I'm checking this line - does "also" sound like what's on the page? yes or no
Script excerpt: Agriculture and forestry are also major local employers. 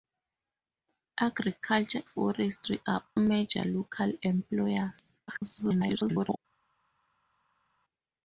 no